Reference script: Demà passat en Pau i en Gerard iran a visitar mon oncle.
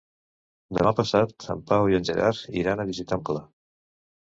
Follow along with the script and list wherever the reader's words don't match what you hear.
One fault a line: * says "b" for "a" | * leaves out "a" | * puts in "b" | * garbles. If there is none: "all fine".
* leaves out "mon"